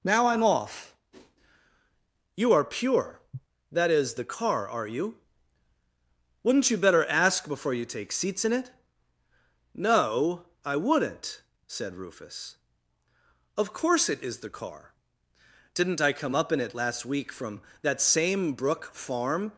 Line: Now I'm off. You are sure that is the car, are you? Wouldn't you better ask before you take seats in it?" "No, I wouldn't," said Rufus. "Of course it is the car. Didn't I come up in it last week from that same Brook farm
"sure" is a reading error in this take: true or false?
true